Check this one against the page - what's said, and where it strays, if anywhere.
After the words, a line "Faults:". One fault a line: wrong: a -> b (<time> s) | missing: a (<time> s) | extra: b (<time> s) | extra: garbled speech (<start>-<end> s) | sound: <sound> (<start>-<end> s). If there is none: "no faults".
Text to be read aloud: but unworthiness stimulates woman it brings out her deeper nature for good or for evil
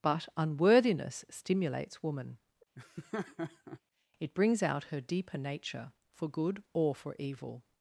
but unworthiness stimulates woman it brings out her deeper nature for good or for evil
Faults:
sound: laugh (2.8-3.8 s)